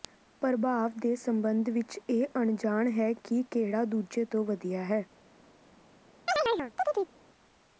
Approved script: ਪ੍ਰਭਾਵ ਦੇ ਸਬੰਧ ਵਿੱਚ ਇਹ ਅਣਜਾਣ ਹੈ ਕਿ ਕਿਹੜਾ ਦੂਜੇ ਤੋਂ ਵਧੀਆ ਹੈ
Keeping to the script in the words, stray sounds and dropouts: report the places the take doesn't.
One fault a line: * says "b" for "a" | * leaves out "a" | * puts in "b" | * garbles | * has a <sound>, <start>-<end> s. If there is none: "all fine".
* has a chirp, 6.3-7.1 s